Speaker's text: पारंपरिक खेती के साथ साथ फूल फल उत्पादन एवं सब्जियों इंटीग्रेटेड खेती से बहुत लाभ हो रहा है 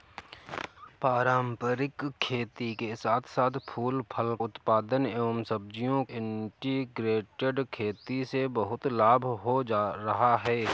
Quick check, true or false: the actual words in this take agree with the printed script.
true